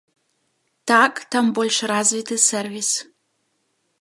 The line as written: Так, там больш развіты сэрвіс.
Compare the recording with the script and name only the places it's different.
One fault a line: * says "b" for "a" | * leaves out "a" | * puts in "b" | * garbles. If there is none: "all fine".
all fine